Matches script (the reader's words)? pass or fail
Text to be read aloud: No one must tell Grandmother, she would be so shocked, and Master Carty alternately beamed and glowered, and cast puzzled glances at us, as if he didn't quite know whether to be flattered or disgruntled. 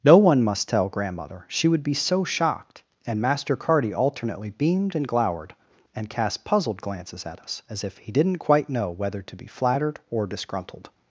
pass